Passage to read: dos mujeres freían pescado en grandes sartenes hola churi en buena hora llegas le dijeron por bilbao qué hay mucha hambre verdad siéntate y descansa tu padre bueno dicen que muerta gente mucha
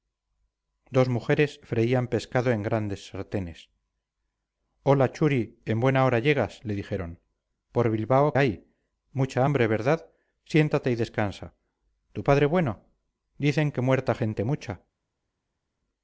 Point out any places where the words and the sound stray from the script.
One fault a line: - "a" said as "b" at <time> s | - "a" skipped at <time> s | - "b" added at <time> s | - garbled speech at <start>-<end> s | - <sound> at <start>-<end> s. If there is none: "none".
- "qué" skipped at 8.3 s